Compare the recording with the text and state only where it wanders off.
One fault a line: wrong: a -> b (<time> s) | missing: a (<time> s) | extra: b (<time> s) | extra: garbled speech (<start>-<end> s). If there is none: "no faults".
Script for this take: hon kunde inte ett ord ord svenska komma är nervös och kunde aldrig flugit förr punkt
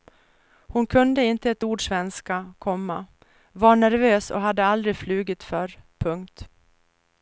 missing: ord (1.9 s)
wrong: är -> var (3.5 s)
wrong: kunde -> hade (4.4 s)